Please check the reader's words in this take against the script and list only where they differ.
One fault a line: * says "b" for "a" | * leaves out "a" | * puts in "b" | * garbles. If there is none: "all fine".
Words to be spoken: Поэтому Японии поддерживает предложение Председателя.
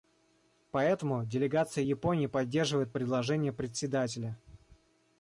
* puts in "делегация"